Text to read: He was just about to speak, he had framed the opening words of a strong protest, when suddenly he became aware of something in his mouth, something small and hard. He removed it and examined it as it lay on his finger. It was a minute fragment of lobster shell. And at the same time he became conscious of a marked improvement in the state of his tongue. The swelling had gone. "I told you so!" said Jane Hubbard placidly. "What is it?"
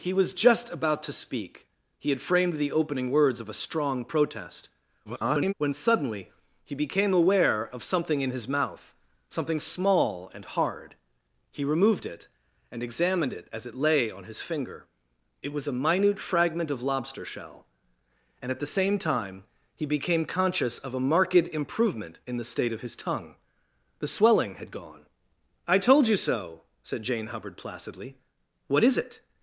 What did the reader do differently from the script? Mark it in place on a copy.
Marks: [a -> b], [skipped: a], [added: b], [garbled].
He was just about to speak, he had framed the opening words of a strong protest, [garbled] when suddenly he became aware of something in his mouth, something small and hard. He removed it and examined it as it lay on his finger. It was a minute fragment of lobster shell. And at the same time he became conscious of a marked improvement in the state of his tongue. The swelling had gone. "I told you so!" said Jane Hubbard placidly. "What is it?"